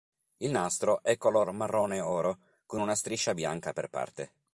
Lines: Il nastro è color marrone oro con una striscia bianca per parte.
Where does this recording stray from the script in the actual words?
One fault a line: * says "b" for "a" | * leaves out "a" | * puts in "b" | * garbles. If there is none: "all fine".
all fine